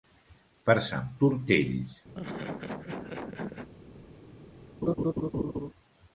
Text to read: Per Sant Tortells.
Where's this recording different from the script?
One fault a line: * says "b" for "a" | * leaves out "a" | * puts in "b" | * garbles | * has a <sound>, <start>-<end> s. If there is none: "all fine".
* has a laugh, 2.1-3.7 s
* has a laugh, 4.8-5.7 s